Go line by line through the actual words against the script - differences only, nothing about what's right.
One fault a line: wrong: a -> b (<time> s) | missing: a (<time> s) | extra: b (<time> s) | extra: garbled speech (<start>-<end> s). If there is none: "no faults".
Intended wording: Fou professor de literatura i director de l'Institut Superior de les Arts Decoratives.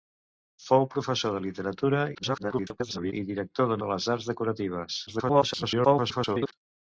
extra: garbled speech (2.1-3.1 s)
missing: l'Institut Superior (3.8 s)
extra: garbled speech (5.1-6.5 s)